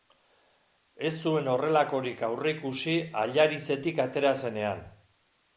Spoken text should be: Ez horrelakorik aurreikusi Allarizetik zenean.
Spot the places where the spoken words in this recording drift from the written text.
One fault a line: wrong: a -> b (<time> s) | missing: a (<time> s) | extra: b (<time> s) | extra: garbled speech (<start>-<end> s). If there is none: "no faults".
extra: zuen (1.2 s)
extra: atera (4.1 s)